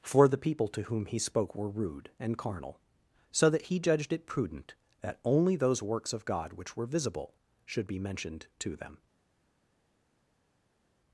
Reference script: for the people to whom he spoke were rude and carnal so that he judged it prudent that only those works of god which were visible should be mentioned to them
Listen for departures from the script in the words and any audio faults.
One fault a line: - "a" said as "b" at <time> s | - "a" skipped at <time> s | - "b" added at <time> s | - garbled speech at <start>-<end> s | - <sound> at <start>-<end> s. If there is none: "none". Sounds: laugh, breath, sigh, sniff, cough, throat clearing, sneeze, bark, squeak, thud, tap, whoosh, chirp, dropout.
none